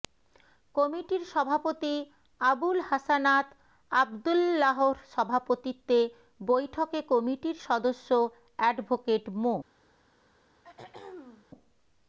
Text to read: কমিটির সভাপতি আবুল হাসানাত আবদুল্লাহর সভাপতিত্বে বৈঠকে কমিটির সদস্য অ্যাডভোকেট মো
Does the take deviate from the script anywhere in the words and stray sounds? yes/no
yes